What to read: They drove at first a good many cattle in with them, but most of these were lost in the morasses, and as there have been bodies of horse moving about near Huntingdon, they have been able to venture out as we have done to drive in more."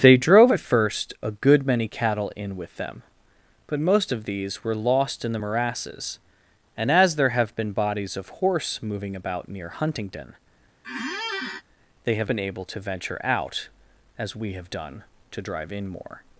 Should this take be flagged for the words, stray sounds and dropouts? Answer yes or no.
yes